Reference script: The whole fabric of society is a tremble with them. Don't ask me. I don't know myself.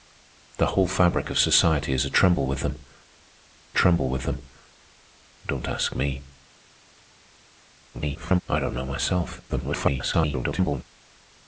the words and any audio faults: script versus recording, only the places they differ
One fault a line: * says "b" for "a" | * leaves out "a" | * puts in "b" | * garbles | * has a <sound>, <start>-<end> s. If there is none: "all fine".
* puts in "tremble with them"
* garbles
* garbles